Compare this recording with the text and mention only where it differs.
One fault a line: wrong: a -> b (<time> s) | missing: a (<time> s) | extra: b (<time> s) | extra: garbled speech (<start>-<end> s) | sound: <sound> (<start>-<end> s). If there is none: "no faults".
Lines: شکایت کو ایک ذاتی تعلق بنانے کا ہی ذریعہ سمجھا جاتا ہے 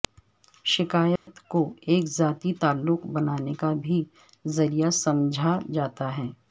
sound: dropout (1.2-1.3 s)
wrong: ہی -> بھی (3.8 s)